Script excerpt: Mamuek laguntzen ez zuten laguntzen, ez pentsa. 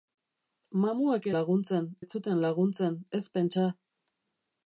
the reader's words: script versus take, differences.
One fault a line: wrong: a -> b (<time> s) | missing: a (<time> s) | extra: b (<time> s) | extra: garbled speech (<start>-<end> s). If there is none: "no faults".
no faults